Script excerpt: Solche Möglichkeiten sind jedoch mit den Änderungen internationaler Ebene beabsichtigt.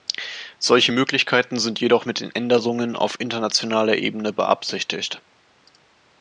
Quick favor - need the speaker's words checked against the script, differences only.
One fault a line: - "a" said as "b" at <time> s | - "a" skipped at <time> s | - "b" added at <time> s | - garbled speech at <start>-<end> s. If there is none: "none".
- "auf" added at 2.9 s